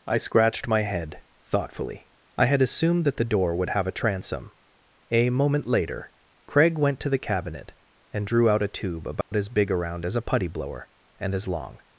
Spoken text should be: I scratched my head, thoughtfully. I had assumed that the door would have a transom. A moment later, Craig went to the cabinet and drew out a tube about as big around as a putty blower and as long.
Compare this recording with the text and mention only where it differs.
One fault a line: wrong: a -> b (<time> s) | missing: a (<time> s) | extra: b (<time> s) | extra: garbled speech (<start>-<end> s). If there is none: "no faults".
no faults